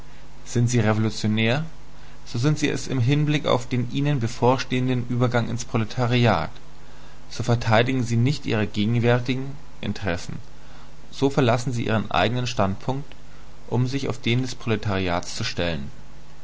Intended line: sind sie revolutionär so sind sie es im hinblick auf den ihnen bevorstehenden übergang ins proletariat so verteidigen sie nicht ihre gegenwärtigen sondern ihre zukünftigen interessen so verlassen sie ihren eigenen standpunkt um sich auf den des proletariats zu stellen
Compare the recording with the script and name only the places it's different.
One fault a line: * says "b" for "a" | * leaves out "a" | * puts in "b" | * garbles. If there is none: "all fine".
* leaves out "sondern ihre zukünftigen"